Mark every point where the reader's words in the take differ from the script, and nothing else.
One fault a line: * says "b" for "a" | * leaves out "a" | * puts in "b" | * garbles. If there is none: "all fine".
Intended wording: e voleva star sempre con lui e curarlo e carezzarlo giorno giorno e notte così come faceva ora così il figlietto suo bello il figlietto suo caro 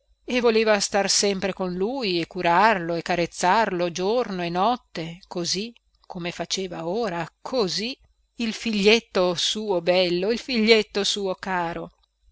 * leaves out "giorno"